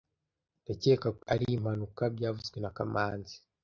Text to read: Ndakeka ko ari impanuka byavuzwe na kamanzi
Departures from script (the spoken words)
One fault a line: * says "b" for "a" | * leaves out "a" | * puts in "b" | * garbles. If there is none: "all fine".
all fine